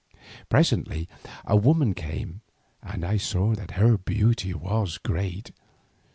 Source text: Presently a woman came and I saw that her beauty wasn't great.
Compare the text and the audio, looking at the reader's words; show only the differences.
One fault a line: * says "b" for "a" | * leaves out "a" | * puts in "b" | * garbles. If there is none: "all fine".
* says "was" for "wasn't"